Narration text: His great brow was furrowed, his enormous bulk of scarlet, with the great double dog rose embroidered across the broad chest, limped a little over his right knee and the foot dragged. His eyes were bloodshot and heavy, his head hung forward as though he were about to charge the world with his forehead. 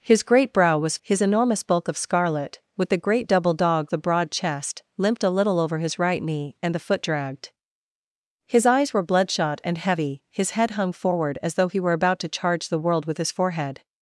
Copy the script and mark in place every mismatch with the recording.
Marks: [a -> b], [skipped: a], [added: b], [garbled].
His great brow was [skipped: furrowed,] his enormous bulk of scarlet, with the great double dog [skipped: rose embroidered across] the broad chest, limped a little over his right knee and the foot dragged. His eyes were bloodshot and heavy, his head hung forward as though he were about to charge the world with his forehead.